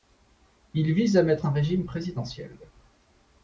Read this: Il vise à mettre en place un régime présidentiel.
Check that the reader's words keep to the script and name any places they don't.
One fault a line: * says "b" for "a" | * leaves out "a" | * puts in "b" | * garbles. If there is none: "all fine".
* leaves out "en place"